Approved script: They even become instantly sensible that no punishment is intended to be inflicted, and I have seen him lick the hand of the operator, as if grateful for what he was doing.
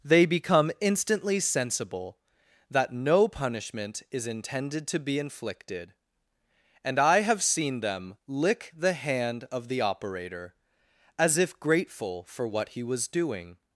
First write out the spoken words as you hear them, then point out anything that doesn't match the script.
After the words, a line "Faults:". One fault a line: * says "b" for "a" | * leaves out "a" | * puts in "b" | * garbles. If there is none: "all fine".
They become instantly sensible that no punishment is intended to be inflicted, and I have seen them lick the hand of the operator, as if grateful for what he was doing.
Faults:
* leaves out "even"
* says "them" for "him"